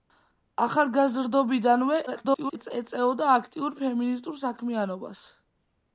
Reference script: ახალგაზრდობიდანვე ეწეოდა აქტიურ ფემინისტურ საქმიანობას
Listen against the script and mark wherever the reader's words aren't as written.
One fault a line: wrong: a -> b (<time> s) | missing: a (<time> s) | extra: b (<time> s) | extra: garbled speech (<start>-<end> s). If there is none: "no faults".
extra: garbled speech (2.1-2.7 s)